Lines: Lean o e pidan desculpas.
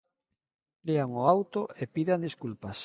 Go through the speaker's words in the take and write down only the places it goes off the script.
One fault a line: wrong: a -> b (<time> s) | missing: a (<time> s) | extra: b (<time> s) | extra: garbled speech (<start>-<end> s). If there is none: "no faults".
extra: auto (1.3 s)